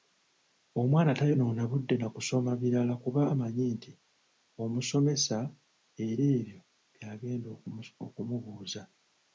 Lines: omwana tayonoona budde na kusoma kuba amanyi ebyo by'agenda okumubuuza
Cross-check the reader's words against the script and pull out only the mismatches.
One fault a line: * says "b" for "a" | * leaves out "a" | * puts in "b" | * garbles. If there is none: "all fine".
* puts in "birala"
* puts in "nti omusomesa era"